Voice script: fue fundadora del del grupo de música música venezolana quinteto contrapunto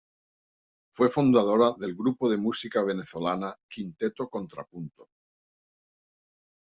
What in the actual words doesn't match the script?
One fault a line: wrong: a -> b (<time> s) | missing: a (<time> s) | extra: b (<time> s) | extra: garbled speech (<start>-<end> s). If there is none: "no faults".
missing: del (1.9 s)
missing: música (2.8 s)